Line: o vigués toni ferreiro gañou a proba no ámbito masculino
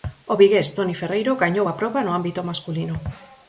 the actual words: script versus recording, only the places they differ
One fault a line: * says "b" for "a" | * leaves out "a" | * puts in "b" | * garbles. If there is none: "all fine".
all fine